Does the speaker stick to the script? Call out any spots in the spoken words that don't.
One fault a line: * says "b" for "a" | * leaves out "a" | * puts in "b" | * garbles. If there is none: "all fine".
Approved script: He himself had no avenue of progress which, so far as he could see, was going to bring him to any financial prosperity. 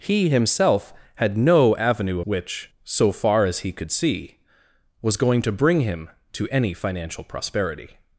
* leaves out "of progress"